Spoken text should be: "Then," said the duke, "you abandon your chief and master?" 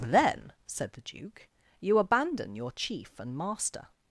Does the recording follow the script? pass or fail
pass